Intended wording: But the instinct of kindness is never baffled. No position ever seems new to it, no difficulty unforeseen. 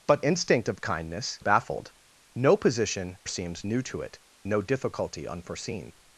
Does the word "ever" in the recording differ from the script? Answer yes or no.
yes